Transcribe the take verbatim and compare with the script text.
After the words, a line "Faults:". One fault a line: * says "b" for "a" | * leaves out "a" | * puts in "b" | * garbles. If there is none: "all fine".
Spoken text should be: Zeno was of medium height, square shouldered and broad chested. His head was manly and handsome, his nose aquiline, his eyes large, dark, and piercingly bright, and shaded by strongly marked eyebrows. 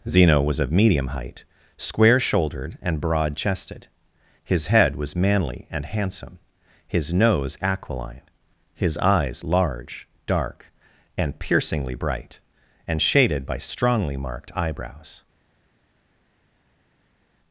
Zeno was of medium height, square shouldered and broad chested. His head was manly and handsome, his nose aquiline, his eyes large, dark, and piercingly bright, and shaded by strongly marked eyebrows.
Faults:
all fine